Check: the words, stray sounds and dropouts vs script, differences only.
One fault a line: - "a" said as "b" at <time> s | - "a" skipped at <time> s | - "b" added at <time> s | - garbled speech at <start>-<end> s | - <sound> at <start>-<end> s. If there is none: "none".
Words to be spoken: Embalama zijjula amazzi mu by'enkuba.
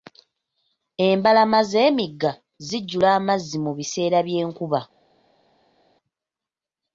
- "z'emigga" added at 1.7 s
- "biseera" added at 3.8 s